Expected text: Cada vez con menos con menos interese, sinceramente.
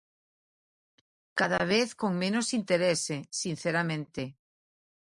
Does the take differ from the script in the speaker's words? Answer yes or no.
yes